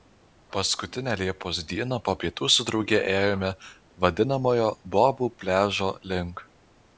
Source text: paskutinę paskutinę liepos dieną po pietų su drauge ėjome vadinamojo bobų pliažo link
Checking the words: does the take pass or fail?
fail